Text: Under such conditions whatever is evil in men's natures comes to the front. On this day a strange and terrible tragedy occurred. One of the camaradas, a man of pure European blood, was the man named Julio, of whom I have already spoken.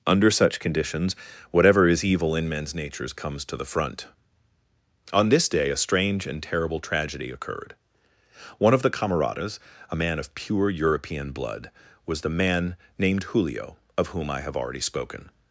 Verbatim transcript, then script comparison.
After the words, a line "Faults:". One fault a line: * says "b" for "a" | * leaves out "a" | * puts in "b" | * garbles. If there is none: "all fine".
Under such conditions whatever is evil in men's natures comes to the front. On this day a strange and terrible tragedy occurred. One of the camaradas, a man of pure European blood, was the man named Julio, of whom I have already spoken.
Faults:
all fine